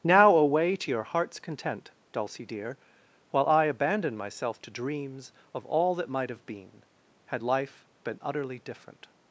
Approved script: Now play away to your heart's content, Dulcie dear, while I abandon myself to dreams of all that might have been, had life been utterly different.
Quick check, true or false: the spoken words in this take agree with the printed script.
false